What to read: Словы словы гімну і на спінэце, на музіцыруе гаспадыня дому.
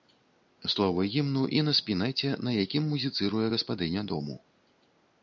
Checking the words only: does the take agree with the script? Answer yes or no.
no